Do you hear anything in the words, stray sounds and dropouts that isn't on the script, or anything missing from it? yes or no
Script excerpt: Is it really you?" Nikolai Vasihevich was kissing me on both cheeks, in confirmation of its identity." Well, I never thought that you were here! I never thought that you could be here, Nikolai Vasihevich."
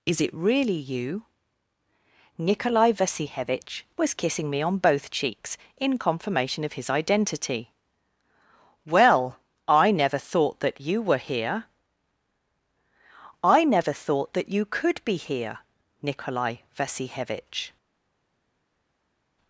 yes